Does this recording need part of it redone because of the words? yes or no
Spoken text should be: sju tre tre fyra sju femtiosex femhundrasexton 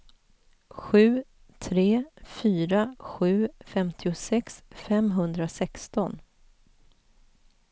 yes